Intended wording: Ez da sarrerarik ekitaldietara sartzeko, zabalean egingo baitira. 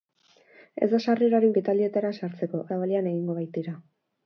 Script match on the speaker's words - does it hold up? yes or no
yes